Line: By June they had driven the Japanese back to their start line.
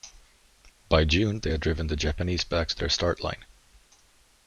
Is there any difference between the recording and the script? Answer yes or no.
no